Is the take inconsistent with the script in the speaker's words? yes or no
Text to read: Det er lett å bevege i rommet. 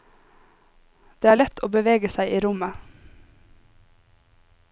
yes